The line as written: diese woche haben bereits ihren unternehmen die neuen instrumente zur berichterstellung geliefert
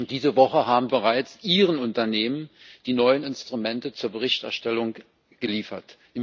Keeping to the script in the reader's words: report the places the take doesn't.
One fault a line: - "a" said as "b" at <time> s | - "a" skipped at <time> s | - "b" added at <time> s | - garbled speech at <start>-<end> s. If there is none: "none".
none